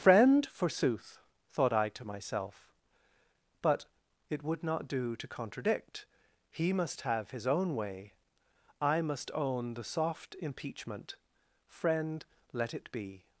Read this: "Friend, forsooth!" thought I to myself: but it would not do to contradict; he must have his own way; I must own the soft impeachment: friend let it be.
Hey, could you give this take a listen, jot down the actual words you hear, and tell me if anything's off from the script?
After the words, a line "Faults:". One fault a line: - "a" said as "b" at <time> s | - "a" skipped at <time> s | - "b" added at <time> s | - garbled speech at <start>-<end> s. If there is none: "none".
"Friend, forsooth!" thought I to myself: but it would not do to contradict; he must have his own way; I must own the soft impeachment: friend let it be.
Faults:
none